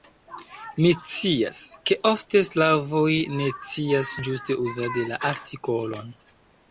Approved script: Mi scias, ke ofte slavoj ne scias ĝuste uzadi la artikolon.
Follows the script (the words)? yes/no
yes